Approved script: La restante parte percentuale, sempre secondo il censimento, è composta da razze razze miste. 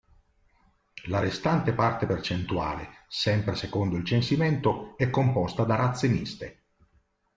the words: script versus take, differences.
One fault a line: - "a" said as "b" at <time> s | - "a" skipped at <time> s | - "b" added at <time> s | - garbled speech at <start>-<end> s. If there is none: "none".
- "razze" skipped at 6.1 s